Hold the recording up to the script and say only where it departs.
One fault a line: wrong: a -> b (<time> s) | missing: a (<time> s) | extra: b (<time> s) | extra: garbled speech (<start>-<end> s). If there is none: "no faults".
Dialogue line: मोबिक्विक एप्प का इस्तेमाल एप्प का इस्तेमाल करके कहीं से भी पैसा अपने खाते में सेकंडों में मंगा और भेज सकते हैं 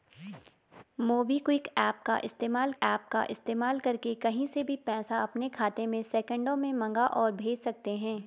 no faults